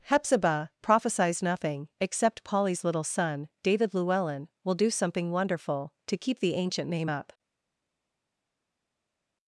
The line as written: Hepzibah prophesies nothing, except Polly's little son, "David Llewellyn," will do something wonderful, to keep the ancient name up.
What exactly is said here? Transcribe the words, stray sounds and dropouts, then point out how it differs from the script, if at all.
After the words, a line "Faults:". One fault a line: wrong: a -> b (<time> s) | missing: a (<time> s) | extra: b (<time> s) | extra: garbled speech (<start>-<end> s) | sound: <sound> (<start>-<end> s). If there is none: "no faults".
Hepzibah prophesies nothing, except Polly's little son, "David Llewellyn," will do something wonderful, to keep the ancient name up.
Faults:
no faults